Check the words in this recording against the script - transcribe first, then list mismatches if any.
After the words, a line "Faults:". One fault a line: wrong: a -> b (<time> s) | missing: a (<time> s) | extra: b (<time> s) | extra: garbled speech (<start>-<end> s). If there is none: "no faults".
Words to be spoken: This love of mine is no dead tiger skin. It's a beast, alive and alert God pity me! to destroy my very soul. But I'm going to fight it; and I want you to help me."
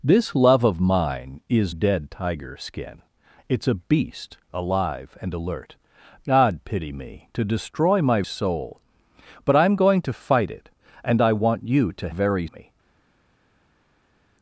This love of mine is dead tiger skin. It's a beast, alive and alert God pity me! to destroy my soul. But I'm going to fight it; and I want you to very me."
Faults:
missing: no (1.8 s)
missing: very (8.2 s)
wrong: help -> very (12.1 s)